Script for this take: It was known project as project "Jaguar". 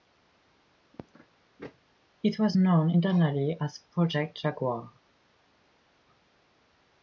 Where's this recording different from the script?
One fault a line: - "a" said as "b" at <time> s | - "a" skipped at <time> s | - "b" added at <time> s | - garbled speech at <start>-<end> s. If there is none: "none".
- "project" said as "internally" at 2.9 s